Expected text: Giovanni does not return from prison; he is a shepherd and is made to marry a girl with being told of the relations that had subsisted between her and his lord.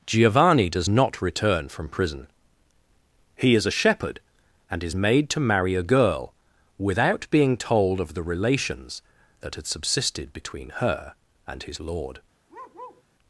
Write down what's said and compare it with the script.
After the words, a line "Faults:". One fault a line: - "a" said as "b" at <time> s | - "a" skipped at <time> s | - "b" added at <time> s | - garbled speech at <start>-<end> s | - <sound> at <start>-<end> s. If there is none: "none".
Giovanni does not return from prison; he is a shepherd and is made to marry a girl without being told of the relations that had subsisted between her and his lord.
Faults:
- "with" said as "without" at 6.8 s
- bark at 12.5-13.0 s